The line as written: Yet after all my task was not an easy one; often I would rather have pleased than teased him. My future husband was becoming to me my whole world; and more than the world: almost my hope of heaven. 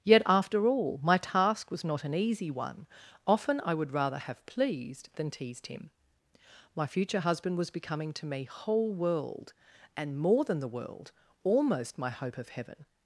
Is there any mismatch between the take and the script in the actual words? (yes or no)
yes